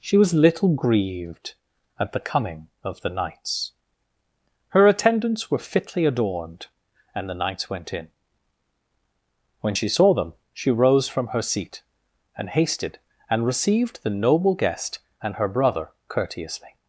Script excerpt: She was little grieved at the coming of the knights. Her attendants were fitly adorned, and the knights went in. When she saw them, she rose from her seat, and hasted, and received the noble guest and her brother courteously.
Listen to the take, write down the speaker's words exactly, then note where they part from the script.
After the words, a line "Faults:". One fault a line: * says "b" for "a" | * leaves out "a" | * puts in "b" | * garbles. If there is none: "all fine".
She was little grieved at the coming of the knights. Her attendants were fitly adorned, and the knights went in. When she saw them, she rose from her seat, and hasted, and received the noble guest and her brother courteously.
Faults:
all fine